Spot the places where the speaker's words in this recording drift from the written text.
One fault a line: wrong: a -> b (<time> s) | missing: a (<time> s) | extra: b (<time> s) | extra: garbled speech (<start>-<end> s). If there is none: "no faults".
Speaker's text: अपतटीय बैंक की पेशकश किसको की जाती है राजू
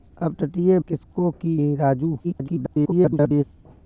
missing: बैंक की पेशकश (0.8 s)
missing: जाती (1.6 s)
extra: garbled speech (2.2-3.4 s)